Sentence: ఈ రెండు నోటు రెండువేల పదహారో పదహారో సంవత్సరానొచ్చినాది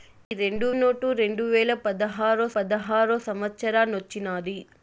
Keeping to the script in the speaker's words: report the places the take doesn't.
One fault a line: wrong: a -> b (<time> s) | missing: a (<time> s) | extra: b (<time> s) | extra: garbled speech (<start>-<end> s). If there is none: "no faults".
no faults